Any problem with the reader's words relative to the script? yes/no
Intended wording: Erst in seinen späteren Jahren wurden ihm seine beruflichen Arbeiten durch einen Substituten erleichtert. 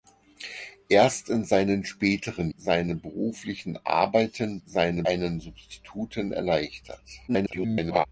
yes